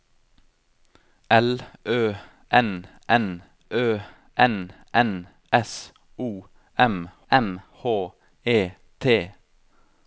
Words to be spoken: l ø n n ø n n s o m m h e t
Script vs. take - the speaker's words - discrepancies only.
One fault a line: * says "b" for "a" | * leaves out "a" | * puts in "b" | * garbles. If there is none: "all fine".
all fine